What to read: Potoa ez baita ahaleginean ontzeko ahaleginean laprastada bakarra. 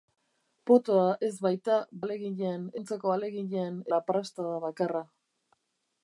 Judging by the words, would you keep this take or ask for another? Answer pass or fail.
pass